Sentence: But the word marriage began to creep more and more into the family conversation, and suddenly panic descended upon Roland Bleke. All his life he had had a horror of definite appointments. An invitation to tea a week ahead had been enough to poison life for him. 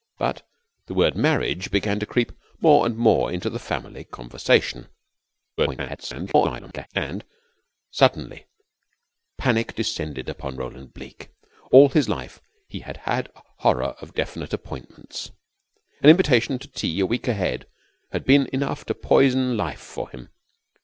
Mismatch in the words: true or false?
true